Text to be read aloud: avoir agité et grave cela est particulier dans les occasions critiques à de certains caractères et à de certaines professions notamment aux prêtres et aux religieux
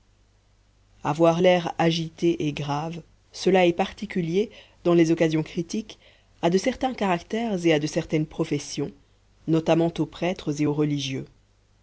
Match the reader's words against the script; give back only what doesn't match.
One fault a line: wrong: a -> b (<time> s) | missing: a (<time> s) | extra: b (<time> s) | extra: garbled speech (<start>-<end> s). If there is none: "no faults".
extra: l'air (1.4 s)